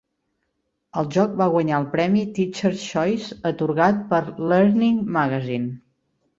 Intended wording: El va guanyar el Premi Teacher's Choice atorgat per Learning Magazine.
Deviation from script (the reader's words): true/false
true